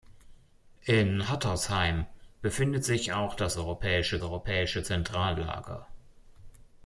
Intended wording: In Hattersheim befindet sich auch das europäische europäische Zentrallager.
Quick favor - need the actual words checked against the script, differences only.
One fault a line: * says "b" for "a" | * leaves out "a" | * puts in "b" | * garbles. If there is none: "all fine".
all fine